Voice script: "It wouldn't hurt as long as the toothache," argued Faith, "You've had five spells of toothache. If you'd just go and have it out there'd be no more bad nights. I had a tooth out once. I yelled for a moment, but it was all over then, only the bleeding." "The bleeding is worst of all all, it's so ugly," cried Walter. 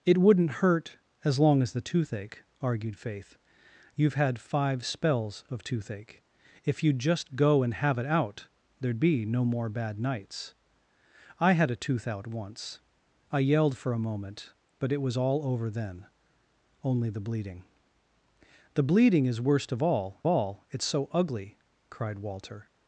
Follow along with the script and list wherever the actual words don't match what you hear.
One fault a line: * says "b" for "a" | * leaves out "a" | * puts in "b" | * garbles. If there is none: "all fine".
all fine